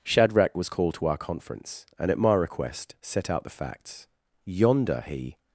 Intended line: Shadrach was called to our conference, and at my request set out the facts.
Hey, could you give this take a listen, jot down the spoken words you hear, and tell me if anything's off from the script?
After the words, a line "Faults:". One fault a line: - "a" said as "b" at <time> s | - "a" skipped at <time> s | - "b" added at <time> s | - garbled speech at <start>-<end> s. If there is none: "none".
Shadrach was called to our conference, and at my request set out the facts. Yonder, he
Faults:
- "Yonder he" added at 4.4 s